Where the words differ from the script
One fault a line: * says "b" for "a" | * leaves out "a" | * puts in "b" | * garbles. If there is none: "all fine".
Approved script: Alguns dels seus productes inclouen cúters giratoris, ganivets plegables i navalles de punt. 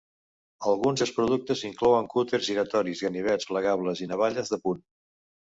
* leaves out "dels"